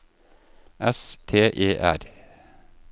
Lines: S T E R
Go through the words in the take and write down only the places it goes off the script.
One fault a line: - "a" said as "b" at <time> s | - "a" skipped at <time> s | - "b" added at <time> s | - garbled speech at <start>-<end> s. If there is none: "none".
none